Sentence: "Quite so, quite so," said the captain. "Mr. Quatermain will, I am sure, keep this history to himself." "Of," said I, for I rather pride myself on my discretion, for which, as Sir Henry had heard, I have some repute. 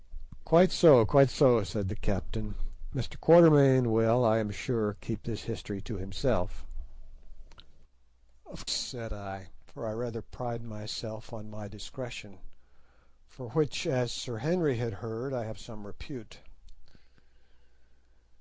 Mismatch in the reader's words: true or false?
false